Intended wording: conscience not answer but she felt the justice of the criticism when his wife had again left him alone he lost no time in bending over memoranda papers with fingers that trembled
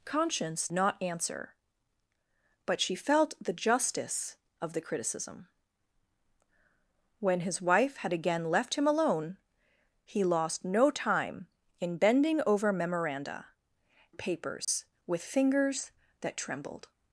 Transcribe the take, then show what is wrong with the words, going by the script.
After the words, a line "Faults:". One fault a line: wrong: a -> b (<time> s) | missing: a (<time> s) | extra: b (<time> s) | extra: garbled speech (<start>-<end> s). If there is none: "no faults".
conscience not answer but she felt the justice of the criticism when his wife had again left him alone he lost no time in bending over memoranda papers with fingers that trembled
Faults:
no faults